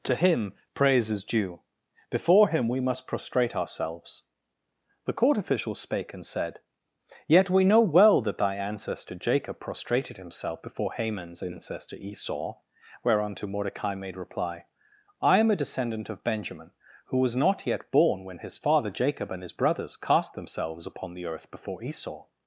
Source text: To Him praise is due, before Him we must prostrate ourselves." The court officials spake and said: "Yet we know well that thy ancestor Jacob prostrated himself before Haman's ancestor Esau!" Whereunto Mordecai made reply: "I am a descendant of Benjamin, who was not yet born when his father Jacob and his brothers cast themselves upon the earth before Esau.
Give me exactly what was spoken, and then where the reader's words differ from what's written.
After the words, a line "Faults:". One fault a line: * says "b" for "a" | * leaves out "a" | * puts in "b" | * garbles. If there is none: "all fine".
To Him praise is due, before Him we must prostrate ourselves." The court officials spake and said: "Yet we know well that thy ancestor Jacob prostrated himself before Haman's ancestor Esau!" Whereunto Mordecai made reply: "I am a descendant of Benjamin, who was not yet born when his father Jacob and his brothers cast themselves upon the earth before Esau.
Faults:
all fine